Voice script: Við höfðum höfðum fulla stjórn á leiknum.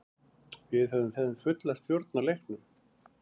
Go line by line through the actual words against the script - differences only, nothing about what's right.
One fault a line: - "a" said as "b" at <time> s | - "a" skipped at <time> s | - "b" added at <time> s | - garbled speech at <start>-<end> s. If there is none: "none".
none